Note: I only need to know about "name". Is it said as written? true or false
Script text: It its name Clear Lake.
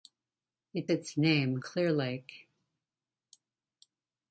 true